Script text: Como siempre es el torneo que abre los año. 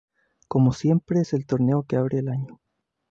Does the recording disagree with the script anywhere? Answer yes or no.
yes